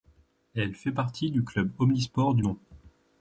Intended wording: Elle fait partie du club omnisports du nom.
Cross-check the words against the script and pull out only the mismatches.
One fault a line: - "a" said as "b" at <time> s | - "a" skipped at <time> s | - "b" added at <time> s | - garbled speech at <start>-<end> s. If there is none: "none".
none